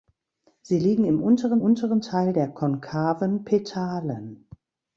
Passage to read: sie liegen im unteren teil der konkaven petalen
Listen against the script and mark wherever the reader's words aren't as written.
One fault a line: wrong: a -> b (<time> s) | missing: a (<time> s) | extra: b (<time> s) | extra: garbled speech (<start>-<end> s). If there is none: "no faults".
extra: unteren (1.6 s)